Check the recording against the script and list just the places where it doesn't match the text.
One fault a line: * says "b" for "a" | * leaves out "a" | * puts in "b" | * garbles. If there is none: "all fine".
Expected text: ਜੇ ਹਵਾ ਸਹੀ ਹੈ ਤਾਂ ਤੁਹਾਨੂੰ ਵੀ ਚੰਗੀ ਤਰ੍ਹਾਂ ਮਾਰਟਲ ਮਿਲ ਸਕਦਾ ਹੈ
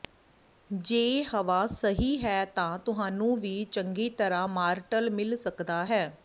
all fine